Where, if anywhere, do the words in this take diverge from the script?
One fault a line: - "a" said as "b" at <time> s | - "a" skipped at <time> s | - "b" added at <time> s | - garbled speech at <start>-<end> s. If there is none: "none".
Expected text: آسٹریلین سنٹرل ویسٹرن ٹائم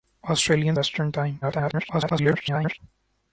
- "سنٹرل" skipped at 0.8 s
- garbled speech at 1.4-2.8 s